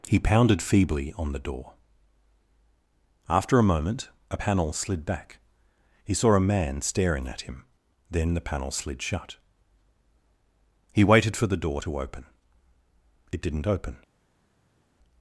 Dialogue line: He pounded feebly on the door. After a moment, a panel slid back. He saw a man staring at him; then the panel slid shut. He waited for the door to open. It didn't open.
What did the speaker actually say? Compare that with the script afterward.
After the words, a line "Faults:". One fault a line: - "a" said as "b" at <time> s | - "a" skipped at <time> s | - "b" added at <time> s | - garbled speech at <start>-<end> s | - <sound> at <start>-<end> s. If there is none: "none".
He pounded feebly on the door. After a moment, a panel slid back. He saw a man staring at him; then the panel slid shut. He waited for the door to open. It didn't open.
Faults:
none